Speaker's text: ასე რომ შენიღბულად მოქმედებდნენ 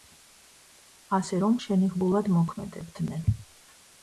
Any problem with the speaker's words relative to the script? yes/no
no